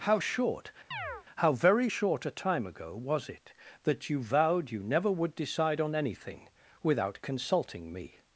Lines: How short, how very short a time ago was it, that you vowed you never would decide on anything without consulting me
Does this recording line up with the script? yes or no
yes